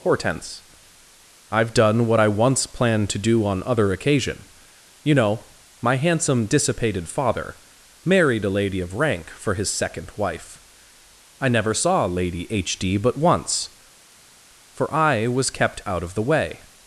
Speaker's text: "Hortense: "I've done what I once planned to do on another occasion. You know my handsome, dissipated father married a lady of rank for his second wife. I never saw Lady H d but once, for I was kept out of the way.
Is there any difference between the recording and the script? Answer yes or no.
yes